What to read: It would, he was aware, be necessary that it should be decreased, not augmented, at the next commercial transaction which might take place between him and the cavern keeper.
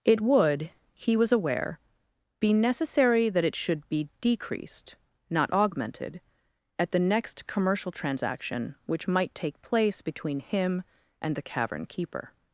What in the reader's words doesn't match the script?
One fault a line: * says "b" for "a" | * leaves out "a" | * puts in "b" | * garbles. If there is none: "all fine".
all fine